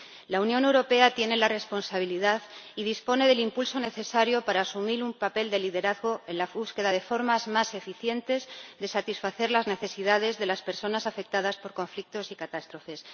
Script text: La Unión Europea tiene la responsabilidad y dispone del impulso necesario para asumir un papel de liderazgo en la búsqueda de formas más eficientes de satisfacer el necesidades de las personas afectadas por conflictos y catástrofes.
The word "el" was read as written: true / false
false